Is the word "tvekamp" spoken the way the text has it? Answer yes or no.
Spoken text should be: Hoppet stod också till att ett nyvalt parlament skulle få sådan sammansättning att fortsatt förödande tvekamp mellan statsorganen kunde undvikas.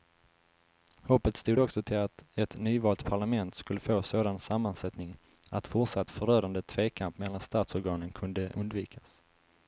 yes